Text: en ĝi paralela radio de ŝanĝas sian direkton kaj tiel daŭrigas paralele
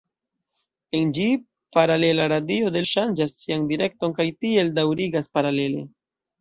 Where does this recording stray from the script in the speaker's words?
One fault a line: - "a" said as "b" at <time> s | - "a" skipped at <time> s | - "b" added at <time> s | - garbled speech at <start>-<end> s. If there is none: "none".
none